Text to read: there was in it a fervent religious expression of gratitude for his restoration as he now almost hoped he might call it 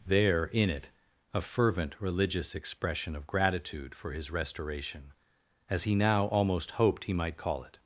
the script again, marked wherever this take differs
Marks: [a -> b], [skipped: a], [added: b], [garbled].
there [skipped: was] in it a fervent religious expression of gratitude for his restoration as he now almost hoped he might call it